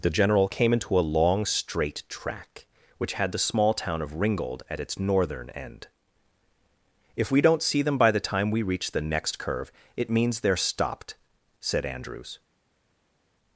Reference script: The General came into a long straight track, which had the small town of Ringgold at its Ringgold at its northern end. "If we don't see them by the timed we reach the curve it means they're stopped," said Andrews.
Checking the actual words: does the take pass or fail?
fail